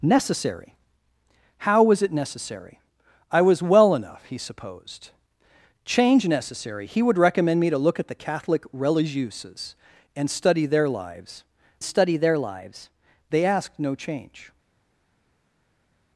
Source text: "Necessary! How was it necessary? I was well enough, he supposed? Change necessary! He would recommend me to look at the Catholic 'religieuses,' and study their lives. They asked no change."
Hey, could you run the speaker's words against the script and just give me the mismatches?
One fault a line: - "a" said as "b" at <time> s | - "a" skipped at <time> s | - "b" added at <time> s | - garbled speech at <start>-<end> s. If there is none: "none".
- "study their lives" added at 11.8 s